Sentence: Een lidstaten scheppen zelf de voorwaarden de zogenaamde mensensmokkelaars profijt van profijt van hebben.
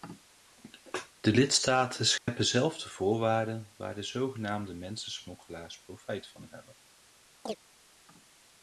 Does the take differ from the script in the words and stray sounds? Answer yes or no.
yes